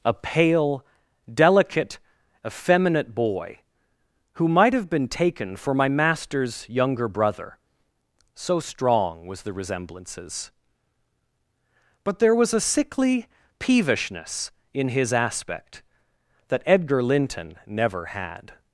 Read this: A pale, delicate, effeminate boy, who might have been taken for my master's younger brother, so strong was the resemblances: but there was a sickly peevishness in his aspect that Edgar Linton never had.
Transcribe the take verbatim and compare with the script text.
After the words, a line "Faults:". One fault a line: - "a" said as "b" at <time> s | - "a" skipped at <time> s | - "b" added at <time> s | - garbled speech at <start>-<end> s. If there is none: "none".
A pale, delicate, effeminate boy, who might have been taken for my master's younger brother, so strong was the resemblances: but there was a sickly peevishness in his aspect that Edgar Linton never had.
Faults:
none